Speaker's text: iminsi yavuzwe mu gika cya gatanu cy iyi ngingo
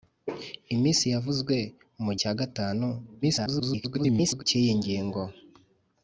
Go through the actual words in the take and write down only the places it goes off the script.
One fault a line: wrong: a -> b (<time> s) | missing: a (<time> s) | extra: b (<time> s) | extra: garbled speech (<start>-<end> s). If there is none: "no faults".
missing: gika (2.1 s)
extra: garbled speech (3.2-4.4 s)